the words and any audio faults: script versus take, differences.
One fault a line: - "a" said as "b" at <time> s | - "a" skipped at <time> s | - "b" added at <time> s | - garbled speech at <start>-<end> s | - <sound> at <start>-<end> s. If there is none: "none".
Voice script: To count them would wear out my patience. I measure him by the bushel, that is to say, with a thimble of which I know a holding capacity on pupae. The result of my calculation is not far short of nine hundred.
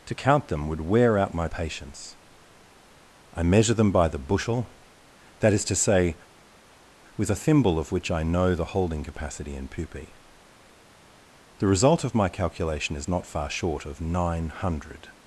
- "him" said as "them" at 3.7 s
- "a" said as "the" at 8.5 s
- "on" said as "in" at 9.5 s